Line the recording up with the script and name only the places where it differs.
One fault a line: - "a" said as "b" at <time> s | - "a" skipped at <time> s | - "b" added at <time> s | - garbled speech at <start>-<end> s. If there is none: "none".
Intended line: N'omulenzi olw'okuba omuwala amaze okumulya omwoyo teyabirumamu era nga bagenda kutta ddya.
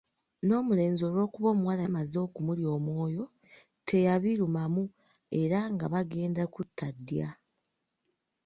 none